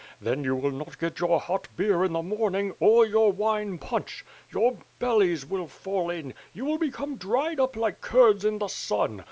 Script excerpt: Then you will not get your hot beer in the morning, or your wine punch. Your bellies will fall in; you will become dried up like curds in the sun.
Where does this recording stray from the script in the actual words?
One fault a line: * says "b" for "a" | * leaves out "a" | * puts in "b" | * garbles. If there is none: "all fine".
all fine